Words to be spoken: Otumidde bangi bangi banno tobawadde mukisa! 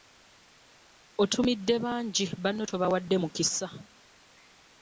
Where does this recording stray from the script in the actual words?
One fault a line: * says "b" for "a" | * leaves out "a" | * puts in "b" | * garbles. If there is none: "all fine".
* leaves out "bangi"